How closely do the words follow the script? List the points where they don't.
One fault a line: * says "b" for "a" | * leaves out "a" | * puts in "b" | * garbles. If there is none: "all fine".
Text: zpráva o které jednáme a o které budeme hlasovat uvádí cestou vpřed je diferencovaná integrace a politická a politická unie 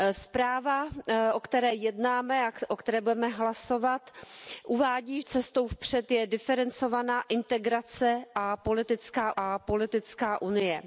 all fine